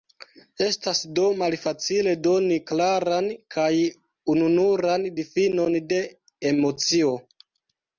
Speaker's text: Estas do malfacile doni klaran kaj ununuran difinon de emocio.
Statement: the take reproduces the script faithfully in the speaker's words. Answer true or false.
true